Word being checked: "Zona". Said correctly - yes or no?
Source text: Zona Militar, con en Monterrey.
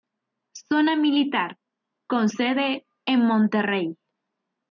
yes